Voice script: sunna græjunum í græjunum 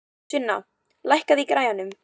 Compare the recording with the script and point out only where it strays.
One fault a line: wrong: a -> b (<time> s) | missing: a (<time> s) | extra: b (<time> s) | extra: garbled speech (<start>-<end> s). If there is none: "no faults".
wrong: græjunum -> lækkaðu (1.1 s)